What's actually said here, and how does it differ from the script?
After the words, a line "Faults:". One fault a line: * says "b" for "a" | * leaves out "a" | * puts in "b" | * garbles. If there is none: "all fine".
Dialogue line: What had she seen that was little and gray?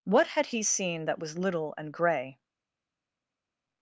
What had he seen that was little and gray?
Faults:
* says "he" for "she"